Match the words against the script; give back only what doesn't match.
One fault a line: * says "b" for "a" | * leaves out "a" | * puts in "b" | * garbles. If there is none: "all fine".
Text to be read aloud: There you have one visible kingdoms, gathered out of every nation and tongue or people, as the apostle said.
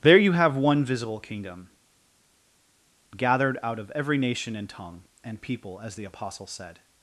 * says "kingdom" for "kingdoms"
* says "and" for "or"